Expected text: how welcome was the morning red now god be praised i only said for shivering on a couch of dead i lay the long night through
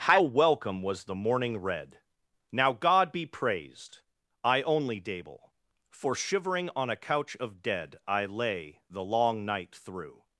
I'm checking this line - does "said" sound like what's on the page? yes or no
no